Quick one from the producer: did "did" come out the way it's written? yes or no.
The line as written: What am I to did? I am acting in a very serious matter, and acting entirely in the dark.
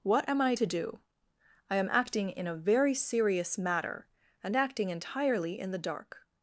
no